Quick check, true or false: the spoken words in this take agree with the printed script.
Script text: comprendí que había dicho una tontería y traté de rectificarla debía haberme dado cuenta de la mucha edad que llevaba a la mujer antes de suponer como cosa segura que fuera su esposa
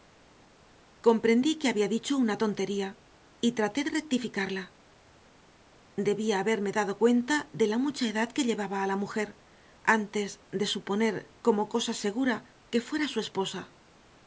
true